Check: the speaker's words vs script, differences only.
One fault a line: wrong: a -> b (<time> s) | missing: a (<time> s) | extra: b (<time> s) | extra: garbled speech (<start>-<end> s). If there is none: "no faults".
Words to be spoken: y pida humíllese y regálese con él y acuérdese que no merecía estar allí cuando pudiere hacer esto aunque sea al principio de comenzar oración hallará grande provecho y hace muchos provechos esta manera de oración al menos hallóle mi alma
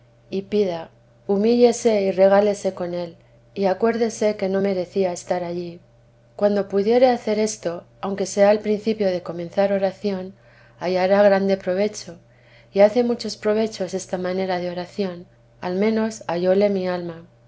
no faults